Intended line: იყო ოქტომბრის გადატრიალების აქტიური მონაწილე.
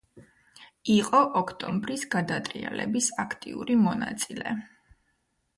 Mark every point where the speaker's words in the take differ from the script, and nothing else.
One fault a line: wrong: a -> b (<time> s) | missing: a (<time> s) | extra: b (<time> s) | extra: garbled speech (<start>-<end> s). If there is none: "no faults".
no faults